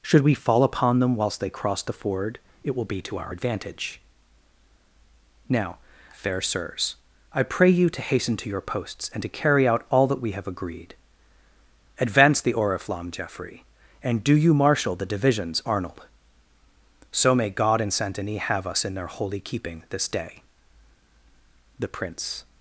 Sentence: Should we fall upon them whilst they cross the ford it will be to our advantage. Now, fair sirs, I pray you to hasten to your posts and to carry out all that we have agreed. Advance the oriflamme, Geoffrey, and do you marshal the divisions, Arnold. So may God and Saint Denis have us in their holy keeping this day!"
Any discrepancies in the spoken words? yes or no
yes